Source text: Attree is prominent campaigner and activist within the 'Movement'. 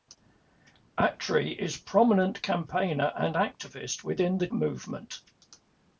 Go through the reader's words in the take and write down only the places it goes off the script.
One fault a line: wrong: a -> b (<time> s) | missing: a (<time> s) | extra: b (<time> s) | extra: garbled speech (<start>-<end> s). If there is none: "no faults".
no faults